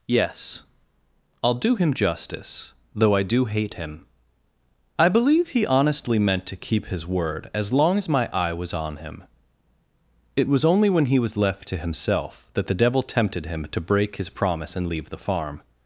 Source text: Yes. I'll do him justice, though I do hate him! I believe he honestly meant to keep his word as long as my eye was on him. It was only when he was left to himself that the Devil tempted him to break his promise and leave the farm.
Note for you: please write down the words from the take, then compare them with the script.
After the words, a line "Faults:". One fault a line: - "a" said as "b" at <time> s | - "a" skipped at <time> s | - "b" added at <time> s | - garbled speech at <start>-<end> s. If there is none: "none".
Yes. I'll do him justice, though I do hate him! I believe he honestly meant to keep his word as long as my eye was on him. It was only when he was left to himself that the Devil tempted him to break his promise and leave the farm.
Faults:
none